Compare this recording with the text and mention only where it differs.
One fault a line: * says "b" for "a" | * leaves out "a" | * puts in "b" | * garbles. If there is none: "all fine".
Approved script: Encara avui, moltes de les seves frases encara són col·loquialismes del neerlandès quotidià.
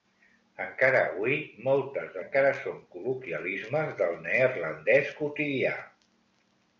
* leaves out "les seves frases"